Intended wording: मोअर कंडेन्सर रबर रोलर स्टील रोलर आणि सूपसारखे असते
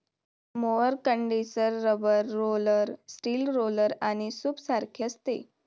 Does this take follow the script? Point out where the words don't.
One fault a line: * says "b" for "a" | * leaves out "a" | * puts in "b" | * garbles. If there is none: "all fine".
all fine